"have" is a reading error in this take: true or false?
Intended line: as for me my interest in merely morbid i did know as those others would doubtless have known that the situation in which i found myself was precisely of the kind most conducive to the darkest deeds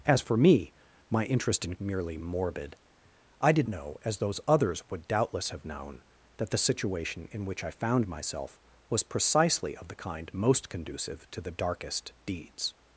false